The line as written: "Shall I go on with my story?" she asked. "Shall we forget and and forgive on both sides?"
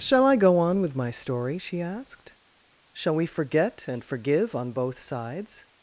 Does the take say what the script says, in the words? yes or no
no